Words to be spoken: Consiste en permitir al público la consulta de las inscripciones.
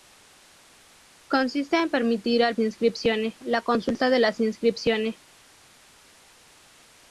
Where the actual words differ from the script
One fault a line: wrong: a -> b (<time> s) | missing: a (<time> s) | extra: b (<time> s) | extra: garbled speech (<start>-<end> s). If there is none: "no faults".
wrong: público -> inscripciones (2.6 s)